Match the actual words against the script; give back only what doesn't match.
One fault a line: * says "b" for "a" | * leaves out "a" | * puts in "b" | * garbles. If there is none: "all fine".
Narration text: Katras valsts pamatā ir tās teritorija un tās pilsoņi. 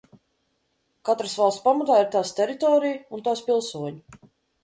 all fine